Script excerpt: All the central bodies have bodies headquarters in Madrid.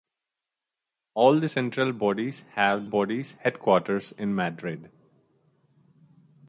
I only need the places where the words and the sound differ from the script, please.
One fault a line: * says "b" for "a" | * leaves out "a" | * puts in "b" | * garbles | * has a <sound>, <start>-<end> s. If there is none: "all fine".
all fine